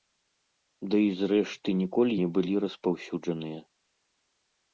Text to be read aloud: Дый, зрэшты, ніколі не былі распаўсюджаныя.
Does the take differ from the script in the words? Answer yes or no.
no